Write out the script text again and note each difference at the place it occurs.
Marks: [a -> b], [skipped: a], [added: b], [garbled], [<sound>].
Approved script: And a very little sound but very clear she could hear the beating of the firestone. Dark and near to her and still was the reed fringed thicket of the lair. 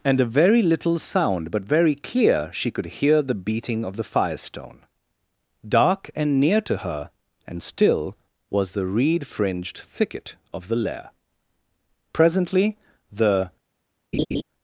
And a very little sound but very clear she could hear the beating of the firestone. Dark and near to her and still was the reed fringed thicket of the lair. [added: Presently the] [laugh]